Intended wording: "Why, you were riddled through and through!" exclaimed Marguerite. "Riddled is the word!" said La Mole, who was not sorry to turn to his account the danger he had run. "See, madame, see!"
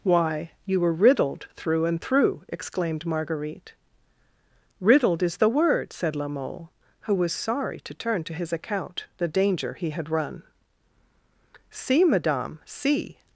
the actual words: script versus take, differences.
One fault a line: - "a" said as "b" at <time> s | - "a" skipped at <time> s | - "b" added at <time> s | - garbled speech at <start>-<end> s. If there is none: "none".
- "not" skipped at 7.3 s